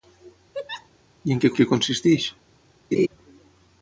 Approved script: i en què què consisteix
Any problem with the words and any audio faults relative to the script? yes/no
yes